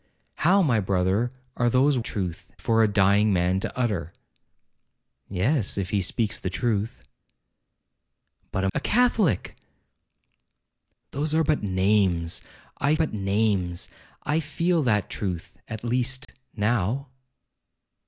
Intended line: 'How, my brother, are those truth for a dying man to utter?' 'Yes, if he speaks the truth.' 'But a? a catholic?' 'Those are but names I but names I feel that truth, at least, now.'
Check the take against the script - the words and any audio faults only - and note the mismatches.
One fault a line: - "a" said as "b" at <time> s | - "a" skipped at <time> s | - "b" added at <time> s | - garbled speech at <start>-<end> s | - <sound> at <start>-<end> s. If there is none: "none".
- dropout at 16.2-16.3 s